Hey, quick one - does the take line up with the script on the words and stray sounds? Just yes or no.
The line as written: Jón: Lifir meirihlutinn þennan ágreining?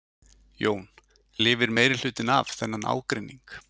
no